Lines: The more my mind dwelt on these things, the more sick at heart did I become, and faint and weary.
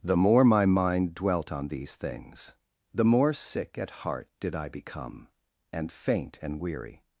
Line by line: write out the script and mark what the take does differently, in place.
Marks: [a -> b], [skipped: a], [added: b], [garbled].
The more my mind dwelt on these things, the more sick at heart did I become, and faint and weary.